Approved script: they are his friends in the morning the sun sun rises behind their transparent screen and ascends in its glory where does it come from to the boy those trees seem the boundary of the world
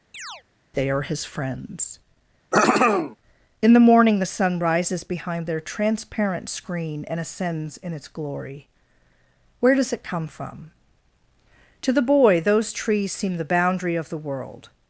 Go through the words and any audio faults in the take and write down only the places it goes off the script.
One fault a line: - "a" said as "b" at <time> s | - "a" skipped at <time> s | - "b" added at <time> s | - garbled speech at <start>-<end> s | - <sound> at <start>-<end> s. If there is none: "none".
- chirp at 0.1-0.4 s
- throat clearing at 2.5-3.2 s
- "sun" skipped at 4.6 s